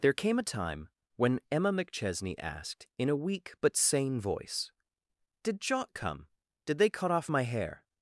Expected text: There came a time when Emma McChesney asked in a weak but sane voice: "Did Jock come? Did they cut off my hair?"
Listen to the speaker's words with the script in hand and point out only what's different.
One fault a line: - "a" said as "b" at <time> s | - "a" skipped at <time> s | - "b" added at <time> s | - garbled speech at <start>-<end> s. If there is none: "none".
none